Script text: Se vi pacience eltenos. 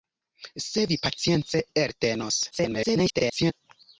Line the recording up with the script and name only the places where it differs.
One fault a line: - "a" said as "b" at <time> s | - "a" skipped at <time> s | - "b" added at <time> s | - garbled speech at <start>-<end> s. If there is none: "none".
- garbled speech at 2.5-3.5 s